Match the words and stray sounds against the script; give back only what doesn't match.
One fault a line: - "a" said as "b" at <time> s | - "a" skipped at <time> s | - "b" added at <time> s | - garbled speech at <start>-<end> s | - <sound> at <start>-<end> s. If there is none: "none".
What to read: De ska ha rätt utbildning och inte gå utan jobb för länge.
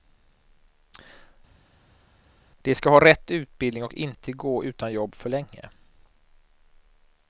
none